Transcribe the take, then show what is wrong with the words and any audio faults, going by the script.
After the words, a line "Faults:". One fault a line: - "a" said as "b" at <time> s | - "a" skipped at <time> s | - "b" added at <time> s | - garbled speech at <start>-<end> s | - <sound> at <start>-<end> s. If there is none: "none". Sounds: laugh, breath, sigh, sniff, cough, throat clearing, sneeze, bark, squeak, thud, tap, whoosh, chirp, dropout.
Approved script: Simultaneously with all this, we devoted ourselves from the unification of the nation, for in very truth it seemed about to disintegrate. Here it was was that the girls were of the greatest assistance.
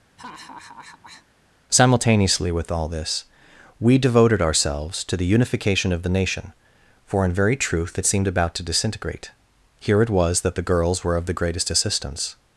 Simultaneously with all this, we devoted ourselves to the unification of the nation, for in very truth it seemed about to disintegrate. Here it was that the girls were of the greatest assistance.
Faults:
- laugh at 0.2-1.3 s
- "from" said as "to" at 5.0 s
- "was" skipped at 10.4 s